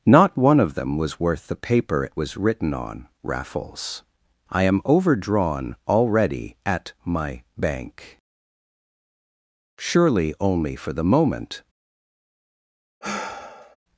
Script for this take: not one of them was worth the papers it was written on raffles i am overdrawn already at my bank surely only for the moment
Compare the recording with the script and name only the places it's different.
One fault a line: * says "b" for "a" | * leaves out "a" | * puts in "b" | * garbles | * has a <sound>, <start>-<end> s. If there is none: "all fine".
* says "paper" for "papers"
* has a sigh, 13.0-13.8 s